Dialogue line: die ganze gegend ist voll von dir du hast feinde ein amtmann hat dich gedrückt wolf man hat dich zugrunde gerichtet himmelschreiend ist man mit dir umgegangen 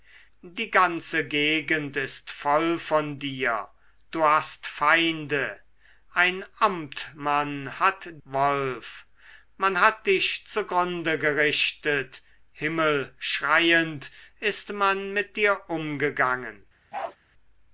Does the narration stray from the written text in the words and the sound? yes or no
yes